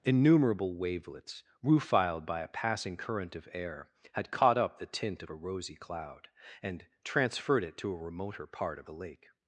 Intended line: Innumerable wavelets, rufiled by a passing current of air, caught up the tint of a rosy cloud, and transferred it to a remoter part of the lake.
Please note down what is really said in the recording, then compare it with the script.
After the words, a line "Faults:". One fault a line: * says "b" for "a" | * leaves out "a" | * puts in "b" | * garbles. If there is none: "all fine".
Innumerable wavelets, rufiled by a passing current of air, had caught up the tint of a rosy cloud, and transferred it to a remoter part of the lake.
Faults:
* puts in "had"